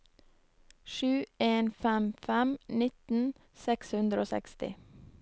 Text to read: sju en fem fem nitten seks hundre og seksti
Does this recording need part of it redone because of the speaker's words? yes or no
no